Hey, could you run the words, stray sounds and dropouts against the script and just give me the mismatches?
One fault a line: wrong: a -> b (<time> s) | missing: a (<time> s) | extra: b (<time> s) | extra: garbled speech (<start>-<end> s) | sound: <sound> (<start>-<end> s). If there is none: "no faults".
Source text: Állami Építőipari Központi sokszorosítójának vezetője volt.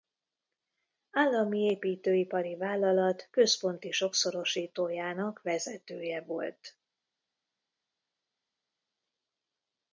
extra: Vállalat (2.5 s)